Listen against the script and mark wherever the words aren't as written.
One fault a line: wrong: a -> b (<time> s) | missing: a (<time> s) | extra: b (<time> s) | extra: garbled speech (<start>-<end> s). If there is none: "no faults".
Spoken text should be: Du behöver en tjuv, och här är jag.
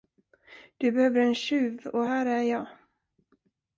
no faults